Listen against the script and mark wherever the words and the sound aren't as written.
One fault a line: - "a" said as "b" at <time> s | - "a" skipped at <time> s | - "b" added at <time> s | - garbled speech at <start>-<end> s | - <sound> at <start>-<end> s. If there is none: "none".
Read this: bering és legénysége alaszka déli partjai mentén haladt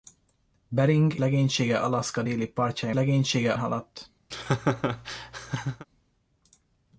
- "és" skipped at 1.1 s
- "mentén" said as "legénysége" at 2.9 s
- laugh at 4.3-5.9 s